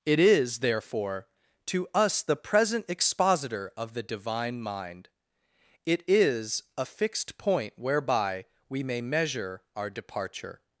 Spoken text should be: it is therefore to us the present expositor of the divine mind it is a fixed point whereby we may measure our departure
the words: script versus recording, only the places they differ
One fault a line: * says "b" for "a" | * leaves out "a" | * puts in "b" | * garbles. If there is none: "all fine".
all fine